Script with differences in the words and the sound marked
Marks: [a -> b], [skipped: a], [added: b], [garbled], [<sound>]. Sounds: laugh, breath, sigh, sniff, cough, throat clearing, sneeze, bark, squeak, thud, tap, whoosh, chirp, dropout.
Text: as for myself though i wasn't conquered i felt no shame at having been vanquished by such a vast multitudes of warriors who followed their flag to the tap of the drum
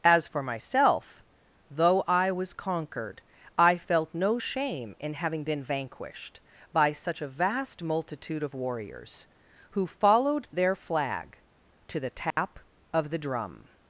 as for myself though i [wasn't -> was] conquered i felt no shame [at -> in] having been vanquished by such a vast [multitudes -> multitude] of warriors who followed their flag to the tap [dropout] of the drum